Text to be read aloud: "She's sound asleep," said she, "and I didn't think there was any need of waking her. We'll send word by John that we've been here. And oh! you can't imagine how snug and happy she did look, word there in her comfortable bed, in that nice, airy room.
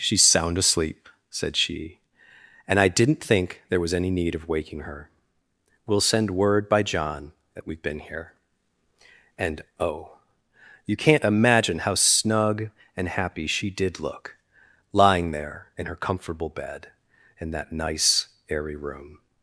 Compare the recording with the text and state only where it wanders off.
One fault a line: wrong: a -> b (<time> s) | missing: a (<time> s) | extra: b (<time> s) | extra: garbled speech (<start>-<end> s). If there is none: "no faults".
wrong: word -> lying (14.9 s)